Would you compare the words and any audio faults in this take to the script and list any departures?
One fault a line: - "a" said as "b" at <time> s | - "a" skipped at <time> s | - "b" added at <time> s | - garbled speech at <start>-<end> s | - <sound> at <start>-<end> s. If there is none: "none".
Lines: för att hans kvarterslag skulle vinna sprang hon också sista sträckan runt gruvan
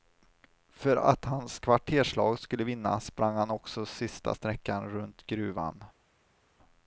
- "hon" said as "han" at 3.4 s